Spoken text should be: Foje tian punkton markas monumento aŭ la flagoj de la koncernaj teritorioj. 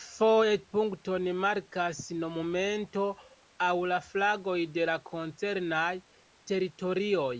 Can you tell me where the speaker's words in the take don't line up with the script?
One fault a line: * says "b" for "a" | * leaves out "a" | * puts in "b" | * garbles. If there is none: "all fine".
* leaves out "tian"